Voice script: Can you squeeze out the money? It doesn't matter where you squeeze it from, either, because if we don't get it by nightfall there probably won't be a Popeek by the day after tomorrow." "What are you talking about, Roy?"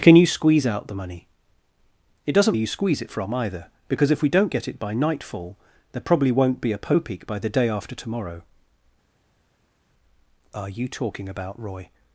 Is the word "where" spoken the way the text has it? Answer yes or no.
no